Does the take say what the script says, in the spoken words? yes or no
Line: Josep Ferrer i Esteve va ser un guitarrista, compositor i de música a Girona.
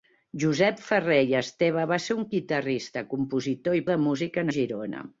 yes